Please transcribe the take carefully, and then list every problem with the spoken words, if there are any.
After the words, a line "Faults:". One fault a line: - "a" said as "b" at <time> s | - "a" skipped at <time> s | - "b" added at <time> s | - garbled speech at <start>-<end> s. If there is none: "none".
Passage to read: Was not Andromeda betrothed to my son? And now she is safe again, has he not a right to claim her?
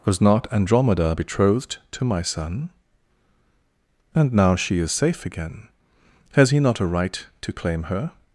Was not Andromeda betrothed to my son? And now she is safe again, has he not a right to claim her?
Faults:
none